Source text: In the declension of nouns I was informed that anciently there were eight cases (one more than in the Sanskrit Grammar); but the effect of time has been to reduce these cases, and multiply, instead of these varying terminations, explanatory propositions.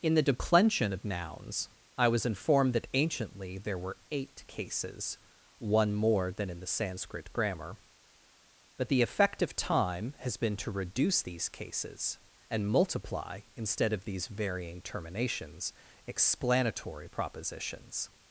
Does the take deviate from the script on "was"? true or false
false